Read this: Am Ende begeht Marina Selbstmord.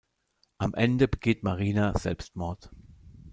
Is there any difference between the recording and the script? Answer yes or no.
no